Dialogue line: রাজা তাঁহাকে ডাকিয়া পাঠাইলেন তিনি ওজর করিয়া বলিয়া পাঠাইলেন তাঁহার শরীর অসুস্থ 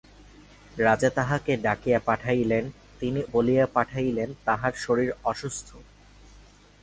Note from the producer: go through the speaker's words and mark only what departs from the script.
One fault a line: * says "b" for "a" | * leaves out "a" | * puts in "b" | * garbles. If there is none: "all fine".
* leaves out "ওজর করিয়া"